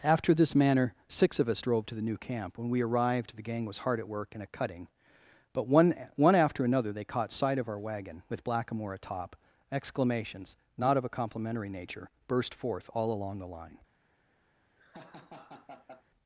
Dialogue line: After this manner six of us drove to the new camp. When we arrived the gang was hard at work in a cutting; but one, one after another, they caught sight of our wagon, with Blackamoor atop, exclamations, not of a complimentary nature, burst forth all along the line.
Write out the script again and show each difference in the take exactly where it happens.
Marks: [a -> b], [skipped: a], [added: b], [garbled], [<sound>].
After this manner six of us drove to the new camp. When we arrived the gang was hard at work in a cutting; but one, one after another, they caught sight of our wagon, with Blackamoor atop, exclamations, not of a complimentary nature, burst forth all along the line. [laugh]